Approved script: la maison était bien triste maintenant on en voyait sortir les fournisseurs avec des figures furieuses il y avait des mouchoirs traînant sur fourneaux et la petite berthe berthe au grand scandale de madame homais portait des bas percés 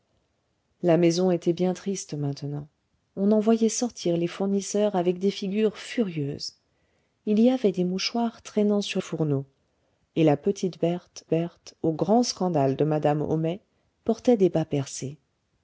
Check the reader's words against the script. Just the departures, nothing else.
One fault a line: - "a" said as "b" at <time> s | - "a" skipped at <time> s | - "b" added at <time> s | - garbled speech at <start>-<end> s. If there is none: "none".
none